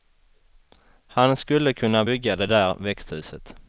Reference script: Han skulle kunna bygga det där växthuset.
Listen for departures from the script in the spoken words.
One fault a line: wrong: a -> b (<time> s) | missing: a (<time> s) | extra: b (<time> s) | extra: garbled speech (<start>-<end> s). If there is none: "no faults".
no faults